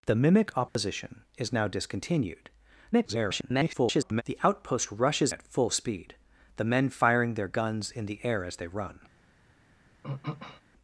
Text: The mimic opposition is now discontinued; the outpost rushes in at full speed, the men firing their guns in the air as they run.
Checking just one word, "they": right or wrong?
right